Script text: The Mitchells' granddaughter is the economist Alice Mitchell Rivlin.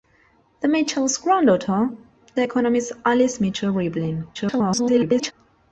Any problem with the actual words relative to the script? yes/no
yes